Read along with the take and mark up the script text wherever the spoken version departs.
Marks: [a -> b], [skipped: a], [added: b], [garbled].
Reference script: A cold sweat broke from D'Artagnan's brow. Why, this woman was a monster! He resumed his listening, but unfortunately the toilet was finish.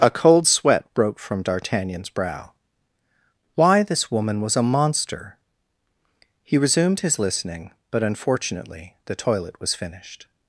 A cold sweat broke from D'Artagnan's brow. Why, this woman was a monster! He resumed his listening, but unfortunately the toilet was [finish. -> finished]